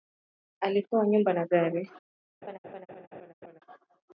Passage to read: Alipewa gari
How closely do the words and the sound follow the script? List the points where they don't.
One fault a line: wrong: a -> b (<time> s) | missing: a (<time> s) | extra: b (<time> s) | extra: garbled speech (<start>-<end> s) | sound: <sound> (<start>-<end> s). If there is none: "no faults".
extra: nyumba na (1.1 s)
sound: laugh (2.4-3.6 s)